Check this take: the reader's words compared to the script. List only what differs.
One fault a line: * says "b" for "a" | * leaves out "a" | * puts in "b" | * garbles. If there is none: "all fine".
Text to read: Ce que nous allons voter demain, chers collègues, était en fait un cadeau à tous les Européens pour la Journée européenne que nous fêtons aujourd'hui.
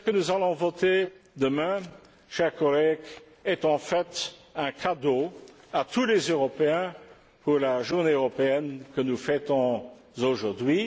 * says "est" for "était"